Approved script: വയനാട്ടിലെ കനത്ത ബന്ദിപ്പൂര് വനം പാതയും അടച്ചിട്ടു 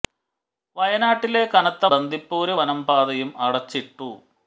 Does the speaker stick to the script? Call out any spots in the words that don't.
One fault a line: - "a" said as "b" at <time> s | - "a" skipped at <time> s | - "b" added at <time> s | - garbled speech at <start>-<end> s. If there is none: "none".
none